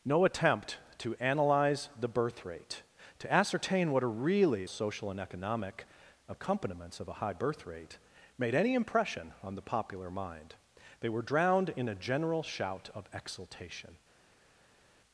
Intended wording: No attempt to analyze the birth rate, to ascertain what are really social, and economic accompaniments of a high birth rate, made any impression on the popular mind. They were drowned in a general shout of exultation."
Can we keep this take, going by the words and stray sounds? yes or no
yes